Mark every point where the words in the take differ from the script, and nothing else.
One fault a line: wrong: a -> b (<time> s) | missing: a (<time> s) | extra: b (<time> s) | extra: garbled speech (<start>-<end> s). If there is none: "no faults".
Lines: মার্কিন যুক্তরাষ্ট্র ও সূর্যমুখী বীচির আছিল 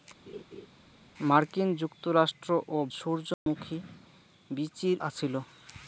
no faults